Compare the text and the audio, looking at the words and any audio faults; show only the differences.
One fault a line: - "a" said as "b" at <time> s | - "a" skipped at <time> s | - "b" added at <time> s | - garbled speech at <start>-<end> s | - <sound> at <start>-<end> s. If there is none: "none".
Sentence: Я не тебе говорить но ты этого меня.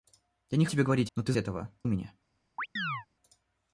- chirp at 2.6-3.1 s